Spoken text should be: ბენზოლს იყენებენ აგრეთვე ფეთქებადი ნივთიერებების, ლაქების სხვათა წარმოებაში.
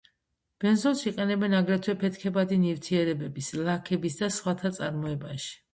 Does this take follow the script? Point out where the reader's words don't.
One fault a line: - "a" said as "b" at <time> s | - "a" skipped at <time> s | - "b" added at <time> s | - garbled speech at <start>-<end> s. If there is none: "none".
- "და" added at 4.2 s